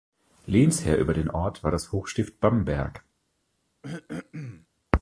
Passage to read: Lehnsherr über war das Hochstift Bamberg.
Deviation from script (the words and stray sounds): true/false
true